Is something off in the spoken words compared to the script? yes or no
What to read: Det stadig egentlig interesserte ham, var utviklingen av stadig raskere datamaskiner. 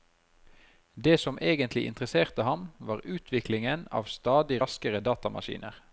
yes